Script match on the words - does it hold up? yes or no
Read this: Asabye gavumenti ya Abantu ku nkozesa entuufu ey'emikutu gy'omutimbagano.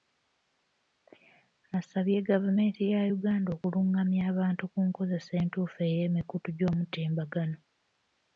no